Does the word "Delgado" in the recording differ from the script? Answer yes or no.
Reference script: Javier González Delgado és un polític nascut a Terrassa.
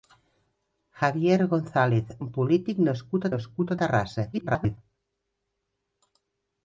yes